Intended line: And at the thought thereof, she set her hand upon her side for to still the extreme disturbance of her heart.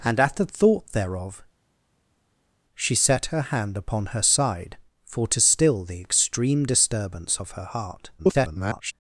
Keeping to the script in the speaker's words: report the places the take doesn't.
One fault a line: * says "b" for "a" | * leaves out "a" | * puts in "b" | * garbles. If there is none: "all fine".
* garbles